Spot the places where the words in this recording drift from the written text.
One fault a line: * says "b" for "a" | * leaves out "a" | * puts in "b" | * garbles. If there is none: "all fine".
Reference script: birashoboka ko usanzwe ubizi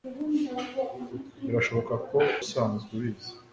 all fine